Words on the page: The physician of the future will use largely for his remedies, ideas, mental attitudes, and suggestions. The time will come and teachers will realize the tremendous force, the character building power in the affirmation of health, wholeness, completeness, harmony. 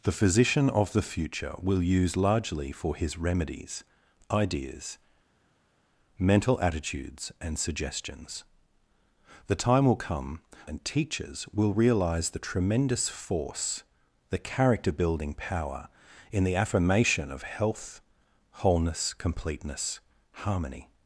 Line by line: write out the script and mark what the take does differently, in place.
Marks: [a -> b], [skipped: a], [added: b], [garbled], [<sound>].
The physician of the future will use largely for his remedies, ideas, mental attitudes, and suggestions. The time will come and teachers will realize the tremendous force, the character building power in the affirmation of health, wholeness, completeness, harmony.